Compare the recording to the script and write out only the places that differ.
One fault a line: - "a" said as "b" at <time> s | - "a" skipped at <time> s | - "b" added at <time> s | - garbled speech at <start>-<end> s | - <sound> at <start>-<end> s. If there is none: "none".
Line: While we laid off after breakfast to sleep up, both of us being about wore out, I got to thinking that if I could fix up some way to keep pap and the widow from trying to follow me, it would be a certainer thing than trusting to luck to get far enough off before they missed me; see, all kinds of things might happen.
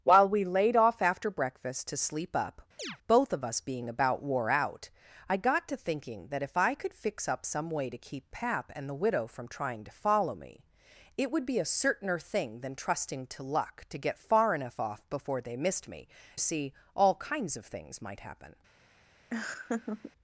- chirp at 2.8-3.0 s
- laugh at 19.3-20.1 s